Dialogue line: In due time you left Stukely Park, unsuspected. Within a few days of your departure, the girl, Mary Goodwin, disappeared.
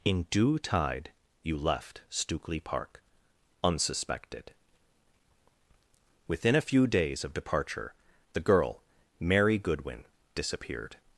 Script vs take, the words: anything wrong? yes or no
yes